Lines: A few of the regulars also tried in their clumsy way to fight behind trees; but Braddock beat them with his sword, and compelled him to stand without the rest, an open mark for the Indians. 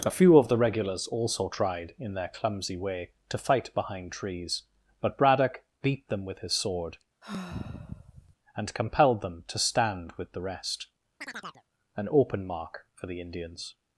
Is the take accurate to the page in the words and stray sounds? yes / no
no